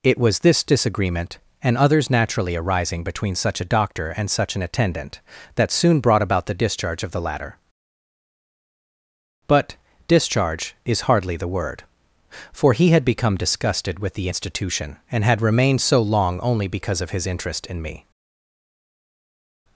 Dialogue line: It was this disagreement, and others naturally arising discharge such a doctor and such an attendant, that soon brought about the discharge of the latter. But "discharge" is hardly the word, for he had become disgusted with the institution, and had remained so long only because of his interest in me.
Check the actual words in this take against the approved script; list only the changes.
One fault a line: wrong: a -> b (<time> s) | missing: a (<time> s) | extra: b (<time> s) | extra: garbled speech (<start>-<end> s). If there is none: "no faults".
wrong: discharge -> between (3.0 s)